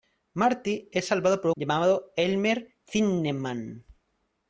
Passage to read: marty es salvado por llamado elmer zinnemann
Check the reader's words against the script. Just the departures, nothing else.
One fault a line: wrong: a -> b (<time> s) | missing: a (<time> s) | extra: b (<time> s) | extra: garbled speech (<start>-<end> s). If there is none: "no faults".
no faults